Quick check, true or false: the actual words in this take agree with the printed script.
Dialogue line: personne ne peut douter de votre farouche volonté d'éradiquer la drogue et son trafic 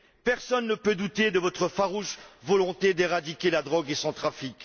true